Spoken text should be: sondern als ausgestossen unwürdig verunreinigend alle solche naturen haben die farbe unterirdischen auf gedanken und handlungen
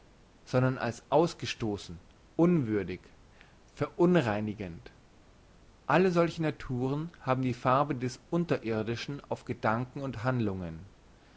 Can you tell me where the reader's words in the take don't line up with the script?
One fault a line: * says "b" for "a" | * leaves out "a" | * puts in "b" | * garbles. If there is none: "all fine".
* puts in "des"